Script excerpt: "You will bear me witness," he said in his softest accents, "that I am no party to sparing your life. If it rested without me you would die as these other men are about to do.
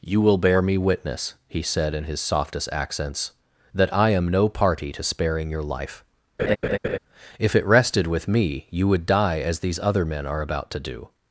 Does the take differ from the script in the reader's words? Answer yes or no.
yes